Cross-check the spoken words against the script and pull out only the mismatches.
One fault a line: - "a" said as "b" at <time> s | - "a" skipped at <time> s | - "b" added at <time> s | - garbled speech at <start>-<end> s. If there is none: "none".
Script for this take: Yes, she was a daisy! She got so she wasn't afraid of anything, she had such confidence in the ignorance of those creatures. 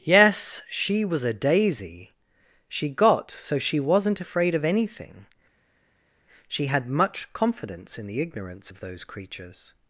- "such" said as "much" at 6.9 s